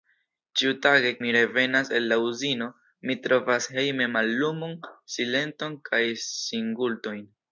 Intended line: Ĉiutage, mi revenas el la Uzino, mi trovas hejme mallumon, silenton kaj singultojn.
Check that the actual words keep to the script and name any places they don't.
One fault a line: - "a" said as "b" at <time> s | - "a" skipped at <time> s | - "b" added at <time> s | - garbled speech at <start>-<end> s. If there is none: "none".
none